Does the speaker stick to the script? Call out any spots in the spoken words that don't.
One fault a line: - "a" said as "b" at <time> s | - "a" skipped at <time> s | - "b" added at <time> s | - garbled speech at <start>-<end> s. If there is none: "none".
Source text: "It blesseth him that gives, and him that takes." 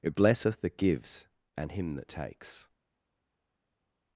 - "him" skipped at 0.6 s